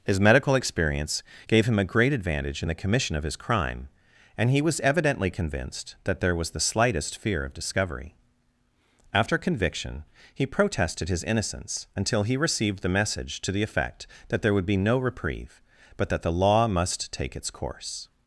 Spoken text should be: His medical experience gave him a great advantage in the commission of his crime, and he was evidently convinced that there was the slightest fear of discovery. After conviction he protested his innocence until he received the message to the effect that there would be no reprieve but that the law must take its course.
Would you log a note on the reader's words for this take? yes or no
no